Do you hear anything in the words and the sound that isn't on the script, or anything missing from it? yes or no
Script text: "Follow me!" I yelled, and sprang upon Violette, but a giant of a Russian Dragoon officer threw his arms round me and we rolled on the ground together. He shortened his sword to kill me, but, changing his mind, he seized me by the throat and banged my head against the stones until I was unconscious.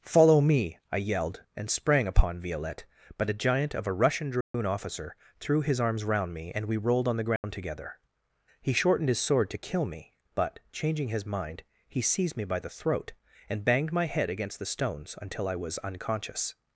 yes